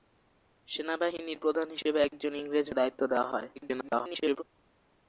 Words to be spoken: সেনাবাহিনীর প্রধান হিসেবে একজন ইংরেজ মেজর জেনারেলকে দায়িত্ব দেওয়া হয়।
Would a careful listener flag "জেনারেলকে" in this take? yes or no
yes